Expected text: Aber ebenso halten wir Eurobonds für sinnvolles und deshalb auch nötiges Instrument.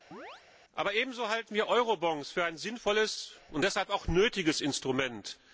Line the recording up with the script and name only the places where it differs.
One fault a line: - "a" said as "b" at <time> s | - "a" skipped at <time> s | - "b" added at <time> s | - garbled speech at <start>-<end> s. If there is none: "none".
- "ein" added at 2.4 s